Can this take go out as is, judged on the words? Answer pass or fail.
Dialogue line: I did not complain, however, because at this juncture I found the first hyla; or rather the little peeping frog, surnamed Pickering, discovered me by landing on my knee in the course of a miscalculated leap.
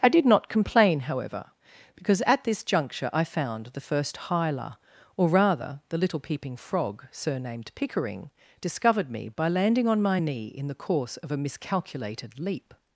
pass